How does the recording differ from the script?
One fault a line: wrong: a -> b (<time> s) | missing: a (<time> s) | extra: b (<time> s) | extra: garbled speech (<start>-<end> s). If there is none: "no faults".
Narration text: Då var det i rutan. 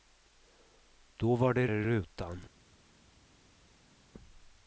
no faults